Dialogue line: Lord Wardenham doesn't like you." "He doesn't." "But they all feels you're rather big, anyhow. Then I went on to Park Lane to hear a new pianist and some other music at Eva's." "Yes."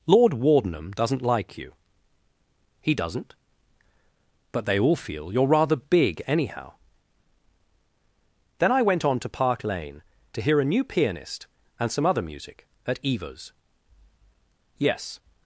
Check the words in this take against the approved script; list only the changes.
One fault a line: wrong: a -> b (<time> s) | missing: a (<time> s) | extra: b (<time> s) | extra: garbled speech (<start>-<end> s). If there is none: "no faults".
wrong: feels -> feel (5.0 s)